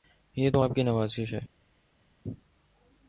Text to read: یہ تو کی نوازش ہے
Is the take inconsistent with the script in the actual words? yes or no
yes